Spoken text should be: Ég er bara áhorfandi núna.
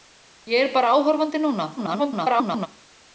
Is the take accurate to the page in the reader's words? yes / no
no